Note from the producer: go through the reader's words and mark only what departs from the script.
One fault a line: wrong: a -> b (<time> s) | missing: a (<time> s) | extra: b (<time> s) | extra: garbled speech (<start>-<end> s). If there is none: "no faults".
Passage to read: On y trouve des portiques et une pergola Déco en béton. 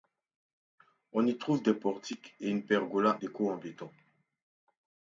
no faults